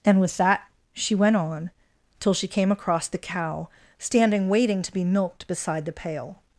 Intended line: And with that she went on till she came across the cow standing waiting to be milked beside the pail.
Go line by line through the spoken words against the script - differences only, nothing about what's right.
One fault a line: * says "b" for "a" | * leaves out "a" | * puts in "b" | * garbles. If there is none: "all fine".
all fine